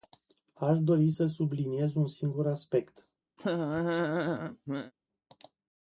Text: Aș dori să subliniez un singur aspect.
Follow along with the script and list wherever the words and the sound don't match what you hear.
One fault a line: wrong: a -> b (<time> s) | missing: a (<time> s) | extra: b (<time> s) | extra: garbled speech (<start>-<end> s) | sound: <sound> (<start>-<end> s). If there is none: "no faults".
sound: laugh (3.4-4.9 s)